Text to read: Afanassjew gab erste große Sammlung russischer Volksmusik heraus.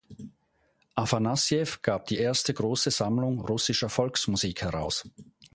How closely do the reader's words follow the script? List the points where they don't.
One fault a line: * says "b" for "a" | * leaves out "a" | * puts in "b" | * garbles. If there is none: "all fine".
* puts in "die"